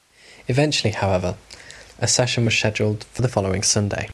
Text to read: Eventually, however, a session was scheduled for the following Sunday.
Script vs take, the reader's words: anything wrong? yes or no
no